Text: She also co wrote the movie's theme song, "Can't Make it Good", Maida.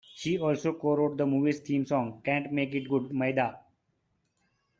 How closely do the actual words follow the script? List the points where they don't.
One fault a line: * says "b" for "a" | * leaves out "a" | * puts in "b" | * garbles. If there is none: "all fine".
all fine